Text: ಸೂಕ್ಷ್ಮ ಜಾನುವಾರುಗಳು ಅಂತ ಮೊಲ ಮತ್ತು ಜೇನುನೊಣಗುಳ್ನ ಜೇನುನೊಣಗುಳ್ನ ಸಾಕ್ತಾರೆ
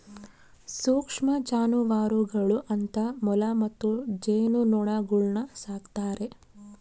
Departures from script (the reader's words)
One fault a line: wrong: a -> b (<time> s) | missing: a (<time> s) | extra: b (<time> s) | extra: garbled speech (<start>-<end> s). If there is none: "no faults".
missing: ಜೇನುನೊಣಗುಳ್ನ (5.4 s)